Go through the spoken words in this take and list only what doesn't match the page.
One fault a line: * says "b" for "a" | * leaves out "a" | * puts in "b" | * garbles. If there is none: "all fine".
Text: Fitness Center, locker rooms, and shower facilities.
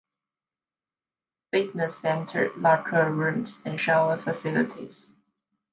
all fine